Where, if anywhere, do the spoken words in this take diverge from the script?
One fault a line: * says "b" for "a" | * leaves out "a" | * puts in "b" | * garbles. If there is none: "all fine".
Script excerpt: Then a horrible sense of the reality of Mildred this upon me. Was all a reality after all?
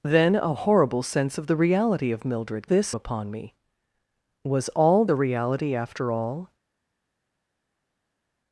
all fine